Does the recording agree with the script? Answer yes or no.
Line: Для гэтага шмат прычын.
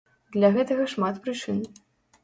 yes